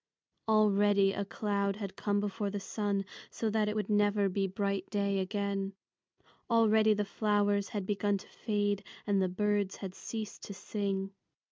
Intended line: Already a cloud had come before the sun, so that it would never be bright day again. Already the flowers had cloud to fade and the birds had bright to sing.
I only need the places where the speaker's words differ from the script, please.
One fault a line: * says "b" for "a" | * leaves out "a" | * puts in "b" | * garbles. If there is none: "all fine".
* says "begun" for "cloud"
* says "ceased" for "bright"